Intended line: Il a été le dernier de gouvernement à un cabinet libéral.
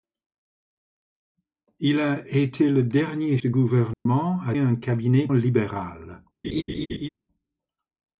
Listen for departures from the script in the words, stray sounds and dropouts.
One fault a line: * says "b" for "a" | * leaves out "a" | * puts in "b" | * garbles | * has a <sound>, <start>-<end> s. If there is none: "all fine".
* has a dropout, 3.9-4.1 s
* has a laugh, 6.4-7.1 s